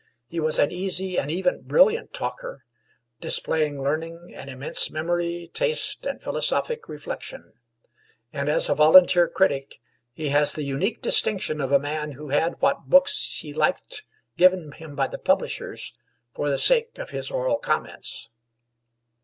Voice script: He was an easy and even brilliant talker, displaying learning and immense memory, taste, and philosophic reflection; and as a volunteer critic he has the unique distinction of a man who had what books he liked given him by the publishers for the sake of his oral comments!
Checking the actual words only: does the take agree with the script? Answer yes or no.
yes